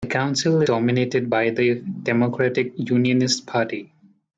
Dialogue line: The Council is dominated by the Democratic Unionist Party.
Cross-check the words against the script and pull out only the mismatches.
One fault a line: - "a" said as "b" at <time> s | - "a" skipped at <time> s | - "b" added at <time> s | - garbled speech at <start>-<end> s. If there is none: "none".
- "is" skipped at 0.6 s